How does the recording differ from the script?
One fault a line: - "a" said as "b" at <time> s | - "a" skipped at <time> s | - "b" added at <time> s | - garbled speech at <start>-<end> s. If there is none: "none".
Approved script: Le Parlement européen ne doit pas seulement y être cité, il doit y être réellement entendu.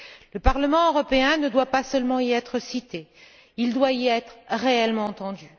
none